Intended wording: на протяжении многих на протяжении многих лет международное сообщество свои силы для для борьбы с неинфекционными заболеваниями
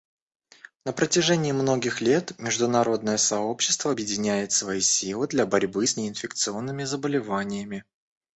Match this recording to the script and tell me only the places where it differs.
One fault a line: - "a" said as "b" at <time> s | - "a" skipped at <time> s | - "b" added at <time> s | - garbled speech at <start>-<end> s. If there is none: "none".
- "на протяжении многих" skipped at 2.0 s
- "объединяет" added at 3.9 s
- "для" skipped at 5.4 s